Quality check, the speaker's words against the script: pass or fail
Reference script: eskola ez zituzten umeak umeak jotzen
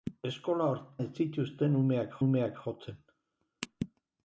pass